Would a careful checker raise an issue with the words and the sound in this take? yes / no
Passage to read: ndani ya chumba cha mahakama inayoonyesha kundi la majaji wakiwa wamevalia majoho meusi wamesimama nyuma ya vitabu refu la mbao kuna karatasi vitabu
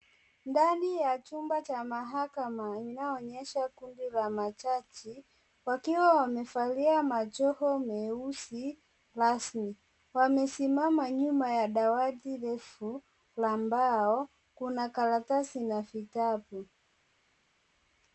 yes